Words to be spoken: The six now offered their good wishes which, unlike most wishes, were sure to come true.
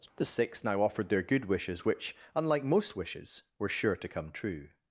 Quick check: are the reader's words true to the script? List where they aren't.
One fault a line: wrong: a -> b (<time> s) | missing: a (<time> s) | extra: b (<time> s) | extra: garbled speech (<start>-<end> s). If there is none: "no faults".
no faults